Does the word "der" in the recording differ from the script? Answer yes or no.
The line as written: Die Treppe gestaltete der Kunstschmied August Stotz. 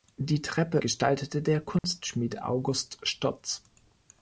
no